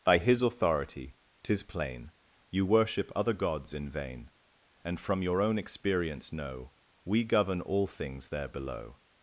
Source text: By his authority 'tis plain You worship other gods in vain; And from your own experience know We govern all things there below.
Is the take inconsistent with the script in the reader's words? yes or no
no